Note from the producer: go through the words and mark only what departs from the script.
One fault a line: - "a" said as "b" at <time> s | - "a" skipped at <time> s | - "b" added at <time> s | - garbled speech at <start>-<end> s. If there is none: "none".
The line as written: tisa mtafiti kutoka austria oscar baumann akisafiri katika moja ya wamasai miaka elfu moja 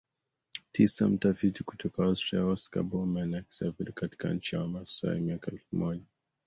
- "moja" said as "nchi" at 4.3 s